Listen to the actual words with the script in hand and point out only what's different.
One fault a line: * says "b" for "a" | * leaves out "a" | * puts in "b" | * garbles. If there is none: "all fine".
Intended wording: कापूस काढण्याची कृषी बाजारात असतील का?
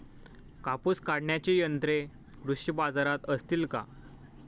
* puts in "यंत्रे"